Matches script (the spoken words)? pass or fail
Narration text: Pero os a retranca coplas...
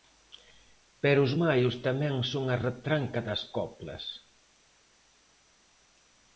fail